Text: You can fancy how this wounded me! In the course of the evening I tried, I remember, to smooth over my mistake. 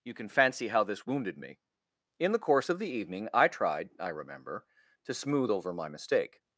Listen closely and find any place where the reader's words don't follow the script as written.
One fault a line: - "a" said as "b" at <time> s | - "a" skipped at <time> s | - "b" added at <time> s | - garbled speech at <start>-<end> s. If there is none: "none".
none